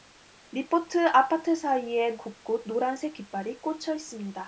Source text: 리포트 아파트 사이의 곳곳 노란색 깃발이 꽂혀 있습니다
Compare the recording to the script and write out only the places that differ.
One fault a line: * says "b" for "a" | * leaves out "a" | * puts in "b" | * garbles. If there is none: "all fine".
all fine